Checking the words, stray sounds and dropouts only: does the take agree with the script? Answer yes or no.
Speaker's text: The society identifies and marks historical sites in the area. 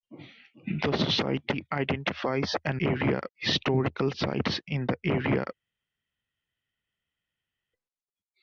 no